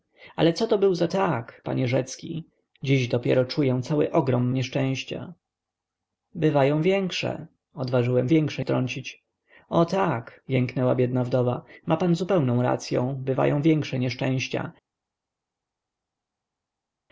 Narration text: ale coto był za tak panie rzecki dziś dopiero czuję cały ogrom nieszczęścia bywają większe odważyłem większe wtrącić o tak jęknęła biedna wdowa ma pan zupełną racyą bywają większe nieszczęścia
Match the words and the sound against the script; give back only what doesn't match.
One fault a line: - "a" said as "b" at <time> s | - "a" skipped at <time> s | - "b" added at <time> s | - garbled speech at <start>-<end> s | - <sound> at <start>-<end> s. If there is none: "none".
none